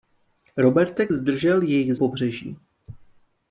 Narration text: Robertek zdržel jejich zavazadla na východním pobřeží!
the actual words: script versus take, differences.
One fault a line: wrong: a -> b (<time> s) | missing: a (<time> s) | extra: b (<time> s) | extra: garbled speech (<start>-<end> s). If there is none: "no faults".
missing: zavazadla na východním (1.9 s)